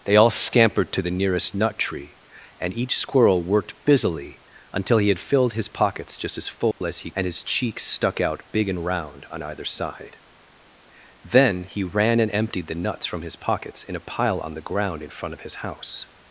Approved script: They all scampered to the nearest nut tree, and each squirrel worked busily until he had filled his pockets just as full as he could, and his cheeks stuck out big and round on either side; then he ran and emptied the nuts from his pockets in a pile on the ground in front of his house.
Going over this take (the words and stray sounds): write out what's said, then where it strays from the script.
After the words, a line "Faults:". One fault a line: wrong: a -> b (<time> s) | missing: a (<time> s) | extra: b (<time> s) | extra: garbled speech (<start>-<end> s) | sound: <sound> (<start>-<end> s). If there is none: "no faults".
They all scampered to the nearest nut tree, and each squirrel worked busily until he had filled his pockets just as full as he and his cheeks stuck out big and round on either side; then he ran and emptied the nuts from his pockets in a pile on the ground in front of his house.
Faults:
sound: dropout (6.7-6.8 s)
missing: could (7.1 s)